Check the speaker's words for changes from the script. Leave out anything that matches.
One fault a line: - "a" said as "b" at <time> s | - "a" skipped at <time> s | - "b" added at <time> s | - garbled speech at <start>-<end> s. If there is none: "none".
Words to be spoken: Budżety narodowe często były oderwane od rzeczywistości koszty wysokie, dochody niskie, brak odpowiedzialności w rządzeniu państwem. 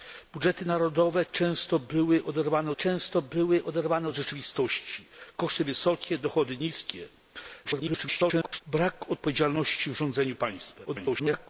- "często były oderwane" added at 2.7 s
- garbled speech at 7.6-8.6 s
- garbled speech at 10.8-11.5 s